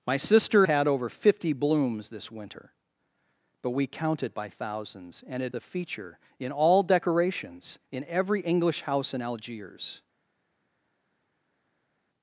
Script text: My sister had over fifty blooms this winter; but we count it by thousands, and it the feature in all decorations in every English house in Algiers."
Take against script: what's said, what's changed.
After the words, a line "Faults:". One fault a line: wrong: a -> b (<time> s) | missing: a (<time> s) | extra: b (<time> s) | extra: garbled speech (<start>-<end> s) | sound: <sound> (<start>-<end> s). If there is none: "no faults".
My sister had over fifty blooms this winter; but we count it by thousands, and it the feature in all decorations in every English house in Algiers."
Faults:
no faults